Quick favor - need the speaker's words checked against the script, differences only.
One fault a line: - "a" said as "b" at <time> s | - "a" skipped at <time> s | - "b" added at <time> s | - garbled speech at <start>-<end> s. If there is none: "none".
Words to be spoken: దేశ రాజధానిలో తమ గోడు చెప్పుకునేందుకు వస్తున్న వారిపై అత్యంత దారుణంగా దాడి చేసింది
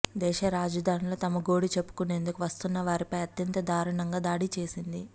none